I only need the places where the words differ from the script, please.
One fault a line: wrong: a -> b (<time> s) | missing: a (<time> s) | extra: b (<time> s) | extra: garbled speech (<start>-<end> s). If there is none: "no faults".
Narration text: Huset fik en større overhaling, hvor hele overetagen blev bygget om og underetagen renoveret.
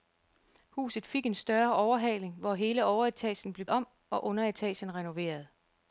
missing: bygget (3.6 s)